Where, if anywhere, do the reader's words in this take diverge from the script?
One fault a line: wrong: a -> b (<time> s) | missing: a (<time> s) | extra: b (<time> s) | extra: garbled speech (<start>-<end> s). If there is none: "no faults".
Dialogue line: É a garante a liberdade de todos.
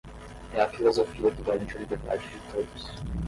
extra: filosofia que (0.7 s)